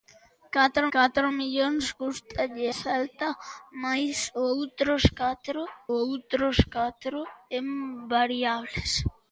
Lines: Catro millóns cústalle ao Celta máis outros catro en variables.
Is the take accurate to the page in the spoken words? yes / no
no